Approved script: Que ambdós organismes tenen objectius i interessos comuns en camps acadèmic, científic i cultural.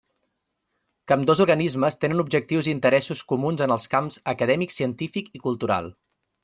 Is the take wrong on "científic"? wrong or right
right